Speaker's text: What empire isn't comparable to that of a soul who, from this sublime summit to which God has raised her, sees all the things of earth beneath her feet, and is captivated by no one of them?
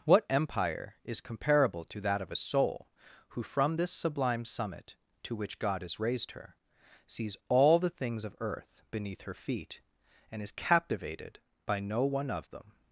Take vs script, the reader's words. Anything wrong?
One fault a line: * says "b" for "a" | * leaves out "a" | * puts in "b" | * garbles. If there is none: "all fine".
* says "is" for "isn't"